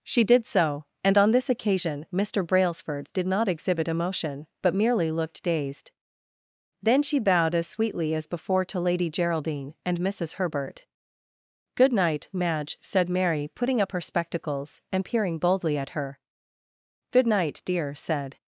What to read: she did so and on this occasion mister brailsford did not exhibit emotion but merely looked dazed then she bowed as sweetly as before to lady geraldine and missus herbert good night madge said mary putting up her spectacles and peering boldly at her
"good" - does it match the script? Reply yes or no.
yes